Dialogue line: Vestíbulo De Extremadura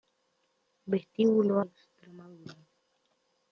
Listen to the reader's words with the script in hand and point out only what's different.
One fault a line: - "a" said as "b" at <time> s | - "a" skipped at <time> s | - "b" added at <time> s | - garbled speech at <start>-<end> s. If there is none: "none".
none